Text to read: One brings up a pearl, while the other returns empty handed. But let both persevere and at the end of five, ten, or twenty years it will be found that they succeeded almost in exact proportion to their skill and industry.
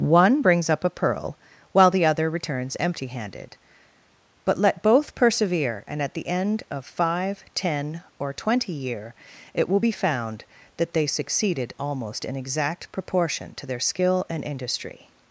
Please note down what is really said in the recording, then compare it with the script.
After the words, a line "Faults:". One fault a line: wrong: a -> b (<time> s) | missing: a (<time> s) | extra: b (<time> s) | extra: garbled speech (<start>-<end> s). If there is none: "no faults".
One brings up a pearl, while the other returns empty handed. But let both persevere and at the end of five, ten, or twenty year it will be found that they succeeded almost in exact proportion to their skill and industry.
Faults:
wrong: years -> year (8.7 s)